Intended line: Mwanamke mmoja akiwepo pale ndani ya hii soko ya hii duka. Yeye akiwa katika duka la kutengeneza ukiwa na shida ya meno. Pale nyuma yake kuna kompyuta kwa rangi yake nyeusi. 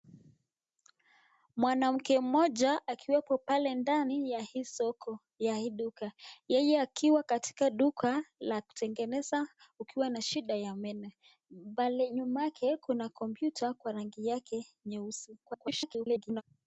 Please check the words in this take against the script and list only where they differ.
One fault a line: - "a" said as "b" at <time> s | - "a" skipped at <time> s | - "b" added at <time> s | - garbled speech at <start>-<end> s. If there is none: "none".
- garbled speech at 15.4-16.4 s